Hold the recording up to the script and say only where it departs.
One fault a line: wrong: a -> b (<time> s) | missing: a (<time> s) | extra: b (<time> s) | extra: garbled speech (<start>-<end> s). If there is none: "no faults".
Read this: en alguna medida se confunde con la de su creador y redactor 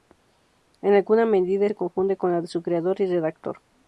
no faults